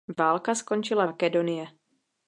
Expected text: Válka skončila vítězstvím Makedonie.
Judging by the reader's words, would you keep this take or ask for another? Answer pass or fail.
fail